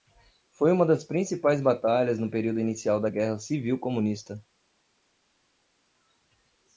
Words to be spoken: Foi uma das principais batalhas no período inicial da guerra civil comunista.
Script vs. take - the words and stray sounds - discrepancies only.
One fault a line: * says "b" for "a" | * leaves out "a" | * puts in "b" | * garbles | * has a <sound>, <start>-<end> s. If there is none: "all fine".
all fine